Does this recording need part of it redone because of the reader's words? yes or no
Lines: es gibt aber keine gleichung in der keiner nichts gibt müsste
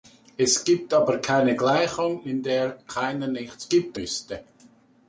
no